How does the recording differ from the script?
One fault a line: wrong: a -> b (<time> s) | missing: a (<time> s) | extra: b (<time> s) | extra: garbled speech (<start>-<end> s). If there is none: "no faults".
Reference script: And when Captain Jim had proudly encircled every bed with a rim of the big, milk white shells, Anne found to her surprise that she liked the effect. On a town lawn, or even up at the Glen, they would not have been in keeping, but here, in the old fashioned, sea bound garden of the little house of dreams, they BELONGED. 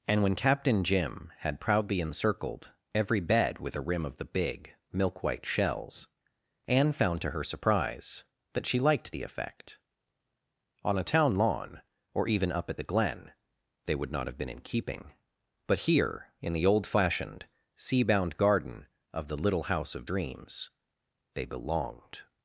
no faults